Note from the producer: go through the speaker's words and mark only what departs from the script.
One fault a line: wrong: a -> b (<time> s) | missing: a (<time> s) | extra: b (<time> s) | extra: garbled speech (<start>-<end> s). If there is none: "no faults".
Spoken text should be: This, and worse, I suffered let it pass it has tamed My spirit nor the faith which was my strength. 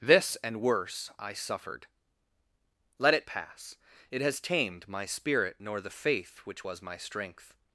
no faults